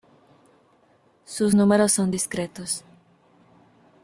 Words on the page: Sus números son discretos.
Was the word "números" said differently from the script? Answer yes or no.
no